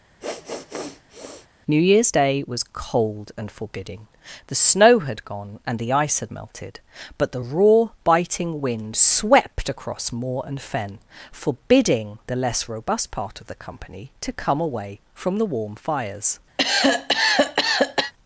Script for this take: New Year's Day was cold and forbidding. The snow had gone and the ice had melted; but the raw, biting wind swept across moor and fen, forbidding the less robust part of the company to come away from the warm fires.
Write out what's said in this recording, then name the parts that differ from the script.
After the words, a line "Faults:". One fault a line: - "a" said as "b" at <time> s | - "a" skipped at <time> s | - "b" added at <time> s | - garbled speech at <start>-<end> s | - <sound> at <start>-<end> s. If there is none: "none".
New Year's Day was cold and forbidding. The snow had gone and the ice had melted; but the raw, biting wind swept across moor and fen, forbidding the less robust part of the company to come away from the warm fires.
Faults:
- sniff at 0.2-1.5 s
- cough at 16.6-18.1 s